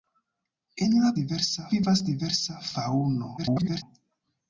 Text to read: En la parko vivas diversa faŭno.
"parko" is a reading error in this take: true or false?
true